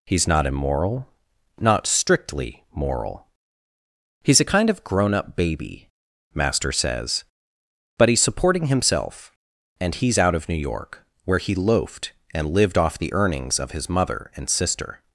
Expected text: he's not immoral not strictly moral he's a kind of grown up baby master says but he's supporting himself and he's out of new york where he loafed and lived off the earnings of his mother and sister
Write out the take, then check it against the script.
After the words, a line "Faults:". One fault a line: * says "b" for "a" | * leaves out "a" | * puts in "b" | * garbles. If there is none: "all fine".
he's not immoral not strictly moral he's a kind of grown up baby master says but he's supporting himself and he's out of new york where he loafed and lived off the earnings of his mother and sister
Faults:
all fine